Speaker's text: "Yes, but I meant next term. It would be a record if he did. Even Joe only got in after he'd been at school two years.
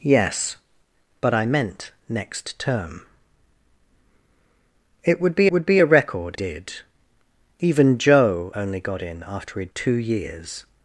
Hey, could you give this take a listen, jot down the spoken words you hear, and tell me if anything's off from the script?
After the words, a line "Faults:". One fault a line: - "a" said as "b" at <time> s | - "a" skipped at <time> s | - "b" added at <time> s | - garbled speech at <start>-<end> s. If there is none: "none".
"Yes, but I meant next term. It would be would be a record did. Even Joe only got in after he'd two years.
Faults:
- "would be" added at 5.5 s
- "if he" skipped at 6.4 s
- "been at school" skipped at 9.7 s